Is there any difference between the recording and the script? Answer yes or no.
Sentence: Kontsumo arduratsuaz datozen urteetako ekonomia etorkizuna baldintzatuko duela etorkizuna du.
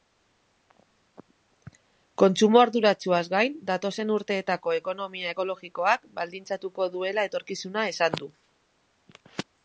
yes